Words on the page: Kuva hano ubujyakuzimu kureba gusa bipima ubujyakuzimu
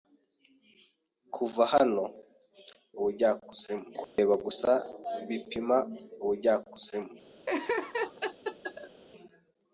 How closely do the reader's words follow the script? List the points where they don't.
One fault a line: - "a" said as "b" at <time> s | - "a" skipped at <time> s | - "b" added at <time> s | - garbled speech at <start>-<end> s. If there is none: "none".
none